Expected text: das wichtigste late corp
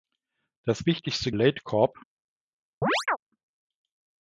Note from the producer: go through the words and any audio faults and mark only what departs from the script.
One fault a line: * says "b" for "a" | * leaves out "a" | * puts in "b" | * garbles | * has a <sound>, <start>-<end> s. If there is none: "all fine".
* has a chirp, 2.8-3.2 s